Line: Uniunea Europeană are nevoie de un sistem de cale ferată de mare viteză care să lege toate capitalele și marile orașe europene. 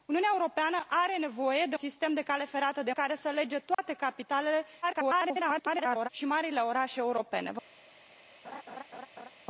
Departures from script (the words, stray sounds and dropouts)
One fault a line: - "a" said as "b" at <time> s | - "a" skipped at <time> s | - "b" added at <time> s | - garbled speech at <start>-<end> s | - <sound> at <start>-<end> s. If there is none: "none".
- "un" skipped at 1.8 s
- "mare viteză" skipped at 2.9 s
- dropout at 3.7-3.8 s
- garbled speech at 4.8-6.1 s
- laugh at 8.4-9.3 s